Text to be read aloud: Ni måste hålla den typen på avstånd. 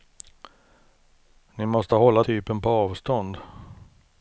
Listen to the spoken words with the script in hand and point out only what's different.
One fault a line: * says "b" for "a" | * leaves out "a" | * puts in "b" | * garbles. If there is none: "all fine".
* leaves out "den"